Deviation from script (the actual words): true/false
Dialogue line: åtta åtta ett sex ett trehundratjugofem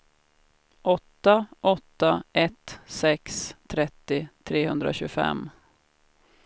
true